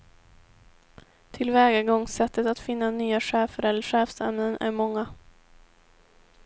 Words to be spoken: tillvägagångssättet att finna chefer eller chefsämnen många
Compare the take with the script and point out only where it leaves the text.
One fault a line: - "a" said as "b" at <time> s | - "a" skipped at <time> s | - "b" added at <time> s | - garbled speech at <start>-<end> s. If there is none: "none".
- "nya" added at 2.9 s
- "är" added at 4.6 s